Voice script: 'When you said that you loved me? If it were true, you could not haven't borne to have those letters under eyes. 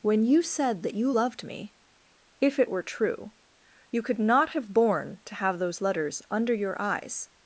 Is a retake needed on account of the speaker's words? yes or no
yes